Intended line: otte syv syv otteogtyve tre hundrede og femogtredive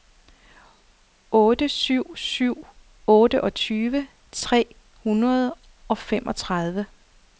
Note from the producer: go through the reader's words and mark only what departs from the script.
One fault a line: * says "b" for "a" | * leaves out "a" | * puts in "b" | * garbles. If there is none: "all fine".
all fine